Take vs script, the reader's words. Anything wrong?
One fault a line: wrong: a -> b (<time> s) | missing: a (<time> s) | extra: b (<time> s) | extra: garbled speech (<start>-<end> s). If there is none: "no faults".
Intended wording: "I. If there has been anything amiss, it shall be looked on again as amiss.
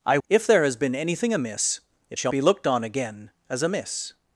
no faults